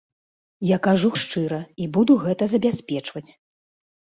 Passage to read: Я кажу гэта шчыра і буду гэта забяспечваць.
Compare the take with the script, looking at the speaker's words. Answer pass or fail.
fail